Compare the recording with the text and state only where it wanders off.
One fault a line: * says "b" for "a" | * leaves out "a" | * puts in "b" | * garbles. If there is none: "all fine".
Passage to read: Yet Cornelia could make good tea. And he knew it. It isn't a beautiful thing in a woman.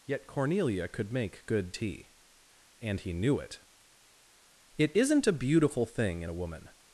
all fine